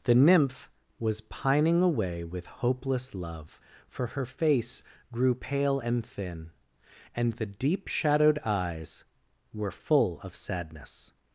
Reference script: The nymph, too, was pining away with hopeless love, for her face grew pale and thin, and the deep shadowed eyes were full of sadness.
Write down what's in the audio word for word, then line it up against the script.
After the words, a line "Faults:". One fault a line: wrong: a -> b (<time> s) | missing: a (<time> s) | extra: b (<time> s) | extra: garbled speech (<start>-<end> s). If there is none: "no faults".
The nymph, was pining away with hopeless love, for her face grew pale and thin, and the deep shadowed eyes were full of sadness.
Faults:
missing: too (0.7 s)